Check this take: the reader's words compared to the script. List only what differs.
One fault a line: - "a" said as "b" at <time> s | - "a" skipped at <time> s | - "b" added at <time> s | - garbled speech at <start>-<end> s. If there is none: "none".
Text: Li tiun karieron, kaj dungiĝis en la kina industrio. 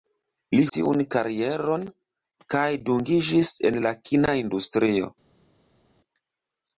none